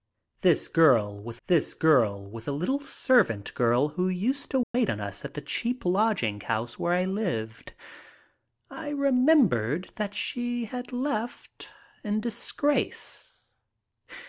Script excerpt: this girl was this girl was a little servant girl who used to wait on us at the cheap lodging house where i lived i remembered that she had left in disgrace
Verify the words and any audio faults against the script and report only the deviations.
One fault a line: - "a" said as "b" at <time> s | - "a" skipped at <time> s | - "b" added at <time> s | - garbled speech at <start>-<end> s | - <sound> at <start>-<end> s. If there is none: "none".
- dropout at 4.6-4.7 s